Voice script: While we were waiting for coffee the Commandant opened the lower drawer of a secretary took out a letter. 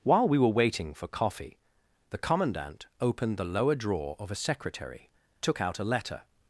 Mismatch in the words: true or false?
false